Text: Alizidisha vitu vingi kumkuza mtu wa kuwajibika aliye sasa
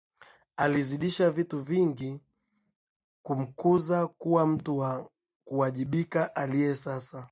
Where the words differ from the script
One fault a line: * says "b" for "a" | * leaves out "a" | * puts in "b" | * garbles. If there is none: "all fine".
* puts in "kuwa"